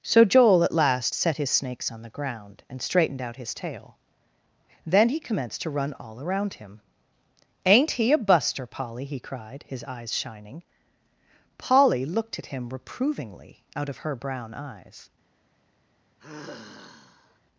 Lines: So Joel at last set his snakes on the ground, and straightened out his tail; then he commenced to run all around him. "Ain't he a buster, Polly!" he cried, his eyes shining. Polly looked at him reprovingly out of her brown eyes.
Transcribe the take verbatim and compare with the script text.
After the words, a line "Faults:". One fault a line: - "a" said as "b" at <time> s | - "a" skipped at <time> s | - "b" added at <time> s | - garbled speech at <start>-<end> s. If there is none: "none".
So Joel at last set his snakes on the ground, and straightened out his tail; then he commenced to run all around him. "Ain't he a buster, Polly!" he cried, his eyes shining. Polly looked at him reprovingly out of her brown eyes.
Faults:
none